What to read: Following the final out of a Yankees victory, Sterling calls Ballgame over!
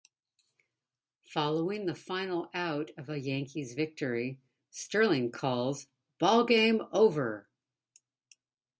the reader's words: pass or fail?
pass